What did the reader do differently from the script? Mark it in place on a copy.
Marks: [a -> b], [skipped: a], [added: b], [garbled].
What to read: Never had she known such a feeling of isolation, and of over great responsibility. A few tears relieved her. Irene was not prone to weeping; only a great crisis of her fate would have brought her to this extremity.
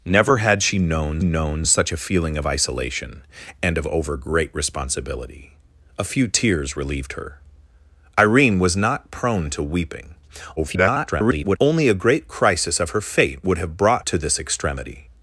Never had she known [added: known] such a feeling of isolation, and of over great responsibility. A few tears relieved her. Irene was not prone to weeping; [garbled] only a great crisis of her fate would have brought [skipped: her] to this extremity.